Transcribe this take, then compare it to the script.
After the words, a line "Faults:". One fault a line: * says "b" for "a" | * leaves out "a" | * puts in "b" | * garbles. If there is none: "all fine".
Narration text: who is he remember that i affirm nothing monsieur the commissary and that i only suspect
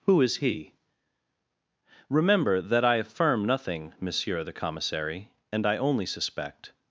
who is he remember that i affirm nothing monsieur the commissary and i only suspect
Faults:
* leaves out "that"